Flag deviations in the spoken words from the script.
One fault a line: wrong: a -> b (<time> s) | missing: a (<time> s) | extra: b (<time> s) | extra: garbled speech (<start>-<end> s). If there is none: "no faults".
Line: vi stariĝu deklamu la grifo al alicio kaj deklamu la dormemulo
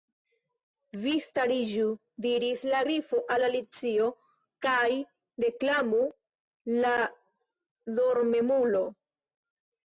wrong: deklamu -> diris (2.2 s)